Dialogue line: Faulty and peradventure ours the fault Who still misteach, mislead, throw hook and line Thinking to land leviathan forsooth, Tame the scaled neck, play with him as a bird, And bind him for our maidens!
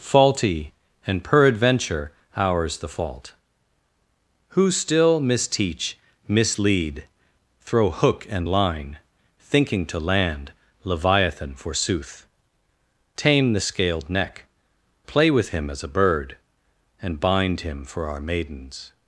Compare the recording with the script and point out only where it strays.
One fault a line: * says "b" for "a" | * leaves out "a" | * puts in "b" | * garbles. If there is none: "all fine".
all fine